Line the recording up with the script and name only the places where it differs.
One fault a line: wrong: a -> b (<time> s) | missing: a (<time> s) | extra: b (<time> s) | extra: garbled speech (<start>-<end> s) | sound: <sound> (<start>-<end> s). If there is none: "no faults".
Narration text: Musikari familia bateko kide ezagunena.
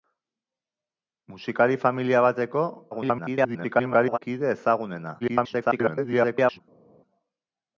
extra: garbled speech (2.9-4.2 s)
extra: garbled speech (5.2-6.6 s)